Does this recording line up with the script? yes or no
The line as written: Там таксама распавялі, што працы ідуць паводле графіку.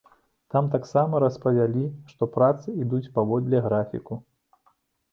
yes